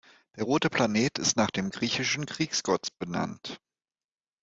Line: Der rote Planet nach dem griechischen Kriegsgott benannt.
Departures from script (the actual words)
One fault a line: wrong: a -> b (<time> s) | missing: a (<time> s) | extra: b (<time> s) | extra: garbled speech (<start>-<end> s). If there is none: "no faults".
extra: ist (1.2 s)